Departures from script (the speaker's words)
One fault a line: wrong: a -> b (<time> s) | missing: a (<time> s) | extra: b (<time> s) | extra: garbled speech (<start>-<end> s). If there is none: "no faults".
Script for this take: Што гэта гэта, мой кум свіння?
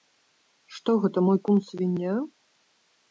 missing: гэта (1.2 s)